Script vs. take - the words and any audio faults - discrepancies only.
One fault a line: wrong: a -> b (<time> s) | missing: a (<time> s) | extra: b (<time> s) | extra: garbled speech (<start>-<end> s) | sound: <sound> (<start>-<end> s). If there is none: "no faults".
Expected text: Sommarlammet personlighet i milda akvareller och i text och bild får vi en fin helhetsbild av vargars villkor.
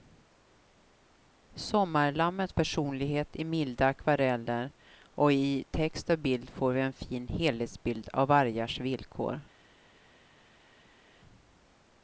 no faults